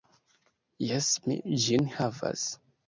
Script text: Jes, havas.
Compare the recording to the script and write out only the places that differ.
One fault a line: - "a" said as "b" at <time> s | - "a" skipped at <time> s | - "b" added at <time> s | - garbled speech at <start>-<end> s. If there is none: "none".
- "mi ĝin" added at 1.3 s